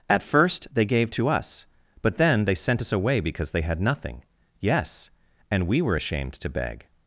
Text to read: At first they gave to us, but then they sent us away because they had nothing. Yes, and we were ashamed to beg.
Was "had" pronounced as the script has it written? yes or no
yes